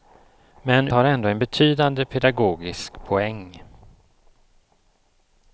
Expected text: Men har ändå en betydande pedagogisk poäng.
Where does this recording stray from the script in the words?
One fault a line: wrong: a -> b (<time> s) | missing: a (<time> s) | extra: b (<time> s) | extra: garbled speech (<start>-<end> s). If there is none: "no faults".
no faults